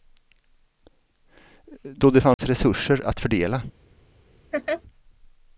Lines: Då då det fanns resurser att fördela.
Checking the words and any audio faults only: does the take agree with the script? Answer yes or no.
no